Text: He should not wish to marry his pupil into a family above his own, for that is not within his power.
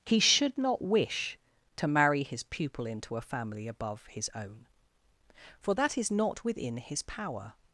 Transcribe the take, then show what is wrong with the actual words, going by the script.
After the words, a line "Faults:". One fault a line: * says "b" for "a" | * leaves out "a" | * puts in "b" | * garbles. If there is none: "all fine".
He should not wish to marry his pupil into a family above his own, for that is not within his power.
Faults:
all fine